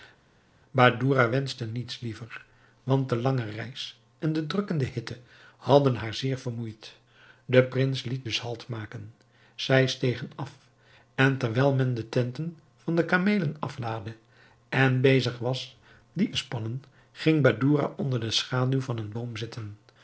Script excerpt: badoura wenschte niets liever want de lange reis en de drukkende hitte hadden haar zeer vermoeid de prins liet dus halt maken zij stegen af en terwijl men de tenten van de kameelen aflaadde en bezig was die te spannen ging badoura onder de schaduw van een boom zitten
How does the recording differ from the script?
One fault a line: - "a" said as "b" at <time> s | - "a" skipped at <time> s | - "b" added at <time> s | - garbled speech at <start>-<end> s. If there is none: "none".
none